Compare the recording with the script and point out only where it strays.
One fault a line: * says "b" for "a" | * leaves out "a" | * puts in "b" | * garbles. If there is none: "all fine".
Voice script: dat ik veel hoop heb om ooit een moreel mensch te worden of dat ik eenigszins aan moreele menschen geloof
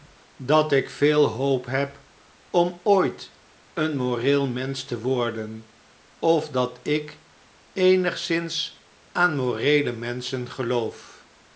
all fine